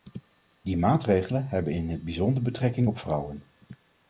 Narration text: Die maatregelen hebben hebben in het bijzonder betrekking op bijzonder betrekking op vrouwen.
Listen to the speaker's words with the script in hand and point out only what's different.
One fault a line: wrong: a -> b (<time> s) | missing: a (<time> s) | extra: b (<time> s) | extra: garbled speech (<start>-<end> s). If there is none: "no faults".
missing: hebben (1.7 s)
missing: bijzonder betrekking op (3.0 s)